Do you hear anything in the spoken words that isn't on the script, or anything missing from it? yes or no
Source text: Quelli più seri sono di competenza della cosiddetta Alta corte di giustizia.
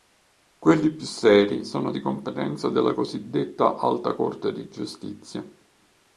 no